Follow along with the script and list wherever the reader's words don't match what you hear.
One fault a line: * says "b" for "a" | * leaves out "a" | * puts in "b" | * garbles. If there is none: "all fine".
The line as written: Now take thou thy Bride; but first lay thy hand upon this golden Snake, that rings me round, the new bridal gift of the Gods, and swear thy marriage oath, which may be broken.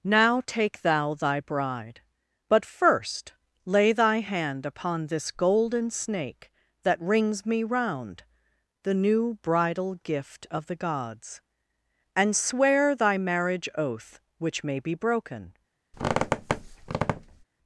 all fine